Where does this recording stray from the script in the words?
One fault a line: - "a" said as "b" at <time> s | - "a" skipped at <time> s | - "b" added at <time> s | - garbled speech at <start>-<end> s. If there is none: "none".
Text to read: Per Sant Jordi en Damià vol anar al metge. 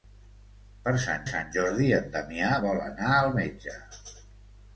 - "Sant" added at 1.3 s